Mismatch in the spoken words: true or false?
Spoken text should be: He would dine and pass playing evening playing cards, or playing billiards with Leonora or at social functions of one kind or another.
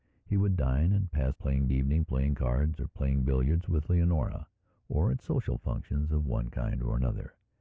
false